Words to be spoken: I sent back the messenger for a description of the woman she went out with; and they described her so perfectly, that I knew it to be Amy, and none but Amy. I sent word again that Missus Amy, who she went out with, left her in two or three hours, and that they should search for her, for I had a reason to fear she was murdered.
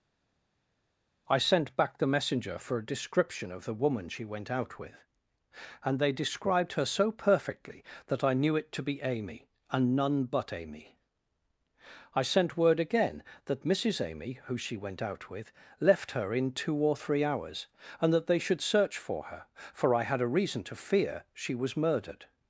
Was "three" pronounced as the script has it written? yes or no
yes